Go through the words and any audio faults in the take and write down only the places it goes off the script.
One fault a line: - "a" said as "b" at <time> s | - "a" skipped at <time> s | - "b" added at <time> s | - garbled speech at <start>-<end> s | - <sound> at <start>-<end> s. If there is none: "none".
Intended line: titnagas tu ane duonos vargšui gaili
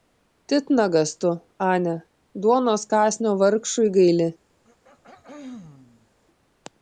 - "kąsnio" added at 2.9 s
- throat clearing at 4.6-6.1 s